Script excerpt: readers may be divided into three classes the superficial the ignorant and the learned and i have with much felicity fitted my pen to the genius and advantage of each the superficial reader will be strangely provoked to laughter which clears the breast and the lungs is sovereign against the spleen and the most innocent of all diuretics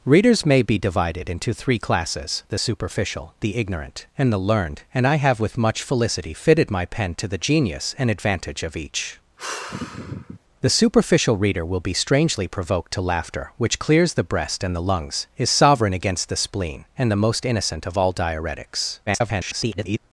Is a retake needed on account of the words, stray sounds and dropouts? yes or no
yes